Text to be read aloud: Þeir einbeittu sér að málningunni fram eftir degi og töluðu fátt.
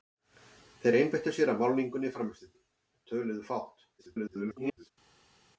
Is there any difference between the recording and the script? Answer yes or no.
yes